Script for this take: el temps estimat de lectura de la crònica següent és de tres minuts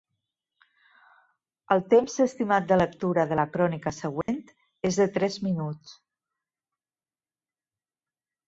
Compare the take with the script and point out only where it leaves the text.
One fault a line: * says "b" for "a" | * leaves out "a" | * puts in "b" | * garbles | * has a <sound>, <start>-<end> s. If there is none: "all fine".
* has a dropout, 4.2-4.3 s